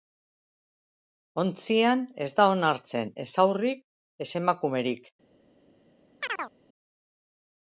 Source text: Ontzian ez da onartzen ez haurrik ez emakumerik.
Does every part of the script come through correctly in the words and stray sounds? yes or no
no